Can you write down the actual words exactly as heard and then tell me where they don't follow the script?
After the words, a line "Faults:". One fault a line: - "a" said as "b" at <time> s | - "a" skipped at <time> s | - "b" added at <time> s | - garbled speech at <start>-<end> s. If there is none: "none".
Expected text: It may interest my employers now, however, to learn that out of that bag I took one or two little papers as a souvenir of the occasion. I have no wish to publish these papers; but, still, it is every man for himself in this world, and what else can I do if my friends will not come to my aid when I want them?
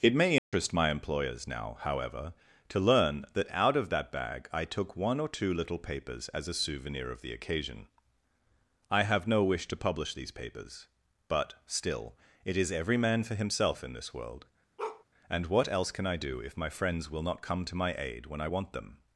It may interest my employers now, however, to learn that out of that bag I took one or two little papers as a souvenir of the occasion. I have no wish to publish these papers; but, still, it is every man for himself in this world, and what else can I do if my friends will not come to my aid when I want them?
Faults:
none